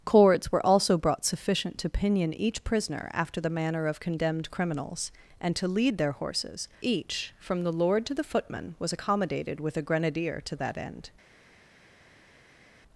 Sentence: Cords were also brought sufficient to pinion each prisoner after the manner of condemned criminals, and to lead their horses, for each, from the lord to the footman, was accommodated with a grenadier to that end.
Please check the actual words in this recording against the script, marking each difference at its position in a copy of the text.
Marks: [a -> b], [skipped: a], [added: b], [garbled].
Cords were also brought sufficient to pinion each prisoner after the manner of condemned criminals, and to lead their horses, [skipped: for] each, from the lord to the footman, was accommodated with a grenadier to that end.